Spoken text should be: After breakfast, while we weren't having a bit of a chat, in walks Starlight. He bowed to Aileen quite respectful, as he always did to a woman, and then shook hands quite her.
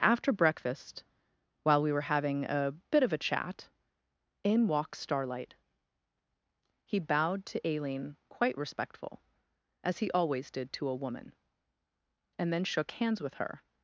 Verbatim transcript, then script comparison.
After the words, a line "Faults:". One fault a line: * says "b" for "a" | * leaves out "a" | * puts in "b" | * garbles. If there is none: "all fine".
After breakfast, while we were having a bit of a chat, in walks Starlight. He bowed to Aileen quite respectful, as he always did to a woman, and then shook hands with her.
Faults:
* says "were" for "weren't"
* says "with" for "quite"